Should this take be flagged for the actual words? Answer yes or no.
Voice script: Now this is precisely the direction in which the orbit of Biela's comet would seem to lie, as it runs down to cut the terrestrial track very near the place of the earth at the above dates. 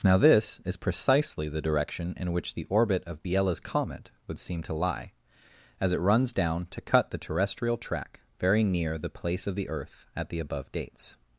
no